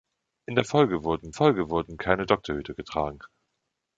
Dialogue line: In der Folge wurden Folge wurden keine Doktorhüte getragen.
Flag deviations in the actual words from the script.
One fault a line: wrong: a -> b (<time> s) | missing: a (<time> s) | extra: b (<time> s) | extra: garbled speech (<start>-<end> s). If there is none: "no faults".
no faults